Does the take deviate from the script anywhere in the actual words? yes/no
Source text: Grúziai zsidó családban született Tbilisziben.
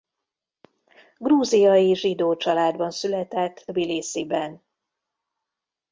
no